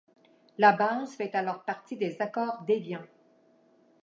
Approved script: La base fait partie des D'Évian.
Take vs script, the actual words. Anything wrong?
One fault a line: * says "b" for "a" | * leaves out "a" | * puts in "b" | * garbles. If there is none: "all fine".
* puts in "alors"
* puts in "Accords"